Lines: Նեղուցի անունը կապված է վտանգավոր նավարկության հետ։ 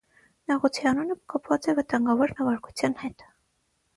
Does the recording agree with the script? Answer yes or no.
yes